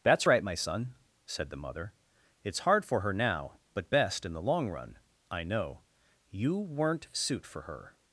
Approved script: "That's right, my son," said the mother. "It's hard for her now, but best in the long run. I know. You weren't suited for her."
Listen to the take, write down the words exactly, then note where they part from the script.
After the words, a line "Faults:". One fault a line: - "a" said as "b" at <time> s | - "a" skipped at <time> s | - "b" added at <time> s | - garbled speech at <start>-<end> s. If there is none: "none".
"That's right, my son," said the mother. "It's hard for her now, but best in the long run. I know. You weren't suit for her."
Faults:
- "suited" said as "suit" at 7.1 s